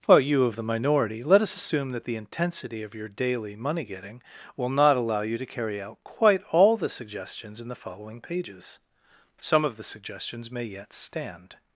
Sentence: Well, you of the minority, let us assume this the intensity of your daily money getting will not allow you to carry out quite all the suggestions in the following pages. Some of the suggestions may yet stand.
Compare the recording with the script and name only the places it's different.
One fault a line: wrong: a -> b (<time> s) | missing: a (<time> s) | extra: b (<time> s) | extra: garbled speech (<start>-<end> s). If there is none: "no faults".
wrong: this -> that (1.9 s)